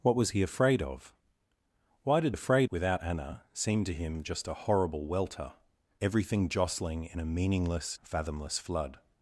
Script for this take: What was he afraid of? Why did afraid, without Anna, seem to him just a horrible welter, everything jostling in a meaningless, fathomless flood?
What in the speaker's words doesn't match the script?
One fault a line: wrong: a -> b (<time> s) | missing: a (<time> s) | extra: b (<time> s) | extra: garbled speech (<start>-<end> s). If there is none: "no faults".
no faults